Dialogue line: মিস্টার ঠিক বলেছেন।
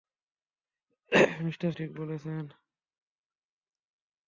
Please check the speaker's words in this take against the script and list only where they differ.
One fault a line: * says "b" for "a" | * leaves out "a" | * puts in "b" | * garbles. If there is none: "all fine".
all fine